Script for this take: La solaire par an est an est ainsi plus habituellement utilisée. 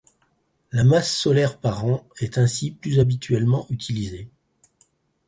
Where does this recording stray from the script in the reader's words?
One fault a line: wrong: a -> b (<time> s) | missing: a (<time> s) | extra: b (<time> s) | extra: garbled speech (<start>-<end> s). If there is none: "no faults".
extra: masse (0.8 s)
missing: an est (2.4 s)